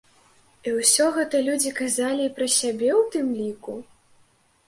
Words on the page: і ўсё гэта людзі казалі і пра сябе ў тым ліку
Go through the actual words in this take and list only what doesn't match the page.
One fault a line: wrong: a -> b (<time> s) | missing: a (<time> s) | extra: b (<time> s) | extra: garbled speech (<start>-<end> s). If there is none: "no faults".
no faults